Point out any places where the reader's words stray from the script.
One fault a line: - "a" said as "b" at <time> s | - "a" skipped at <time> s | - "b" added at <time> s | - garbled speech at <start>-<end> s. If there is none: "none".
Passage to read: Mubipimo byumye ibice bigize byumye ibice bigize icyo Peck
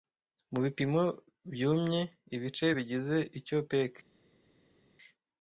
- "byumye ibice bigize" skipped at 3.2 s